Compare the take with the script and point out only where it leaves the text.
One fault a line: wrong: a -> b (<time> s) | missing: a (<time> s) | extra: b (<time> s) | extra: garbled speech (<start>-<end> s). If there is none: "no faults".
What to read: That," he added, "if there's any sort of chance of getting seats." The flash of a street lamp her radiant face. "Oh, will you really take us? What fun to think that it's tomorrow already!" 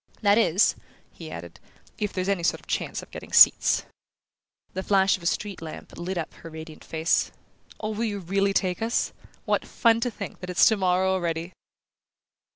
extra: is (0.4 s)
extra: lit up (6.0 s)